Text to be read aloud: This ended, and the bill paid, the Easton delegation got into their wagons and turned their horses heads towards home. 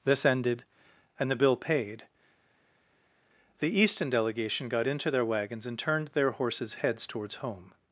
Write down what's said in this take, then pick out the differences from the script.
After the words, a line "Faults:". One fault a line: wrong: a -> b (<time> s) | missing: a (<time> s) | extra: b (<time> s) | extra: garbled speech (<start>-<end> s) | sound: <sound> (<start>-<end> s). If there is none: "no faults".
This ended, and the bill paid, the Easton delegation got into their wagons and turned their horses heads towards home.
Faults:
no faults